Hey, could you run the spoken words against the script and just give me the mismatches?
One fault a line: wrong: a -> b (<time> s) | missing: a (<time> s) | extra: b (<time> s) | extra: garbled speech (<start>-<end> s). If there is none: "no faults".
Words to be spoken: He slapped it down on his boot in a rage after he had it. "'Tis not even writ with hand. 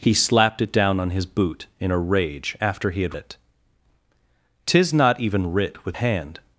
no faults